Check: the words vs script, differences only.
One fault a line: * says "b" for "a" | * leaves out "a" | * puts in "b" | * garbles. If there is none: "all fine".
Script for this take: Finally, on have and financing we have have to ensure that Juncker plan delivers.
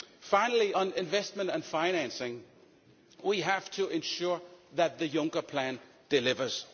* says "investment" for "have"
* leaves out "have"
* puts in "the"